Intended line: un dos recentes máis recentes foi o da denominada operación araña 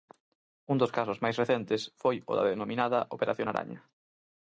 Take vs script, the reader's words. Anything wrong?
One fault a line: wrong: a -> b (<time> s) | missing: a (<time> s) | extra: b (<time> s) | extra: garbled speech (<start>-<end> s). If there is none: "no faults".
wrong: recentes -> casos (1.0 s)